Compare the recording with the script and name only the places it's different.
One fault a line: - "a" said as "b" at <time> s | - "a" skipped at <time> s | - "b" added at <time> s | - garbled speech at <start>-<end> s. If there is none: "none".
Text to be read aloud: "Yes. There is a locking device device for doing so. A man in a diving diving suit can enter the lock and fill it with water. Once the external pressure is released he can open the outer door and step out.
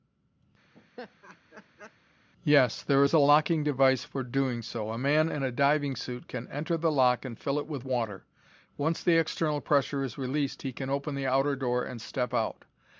- "device" skipped at 4.0 s
- "diving" skipped at 5.9 s